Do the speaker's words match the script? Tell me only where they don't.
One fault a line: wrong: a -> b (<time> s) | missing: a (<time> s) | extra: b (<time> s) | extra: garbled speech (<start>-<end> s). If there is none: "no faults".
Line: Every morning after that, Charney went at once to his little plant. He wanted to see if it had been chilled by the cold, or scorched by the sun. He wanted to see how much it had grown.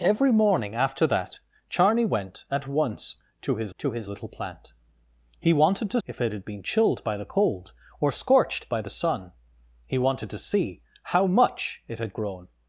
extra: to his (3.8 s)
missing: see (6.0 s)